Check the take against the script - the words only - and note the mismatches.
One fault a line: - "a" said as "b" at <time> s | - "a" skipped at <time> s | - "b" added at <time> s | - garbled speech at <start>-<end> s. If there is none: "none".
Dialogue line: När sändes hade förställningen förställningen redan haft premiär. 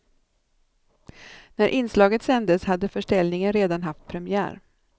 - "inslaget" added at 1.7 s
- "förställningen" skipped at 3.5 s